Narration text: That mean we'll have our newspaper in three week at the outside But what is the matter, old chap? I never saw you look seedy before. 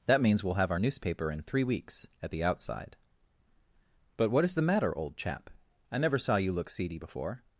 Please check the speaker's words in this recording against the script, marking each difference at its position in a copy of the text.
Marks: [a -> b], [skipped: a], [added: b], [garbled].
That [mean -> means] we'll have our newspaper in three [week -> weeks] at the outside But what is the matter, old chap? I never saw you look seedy before.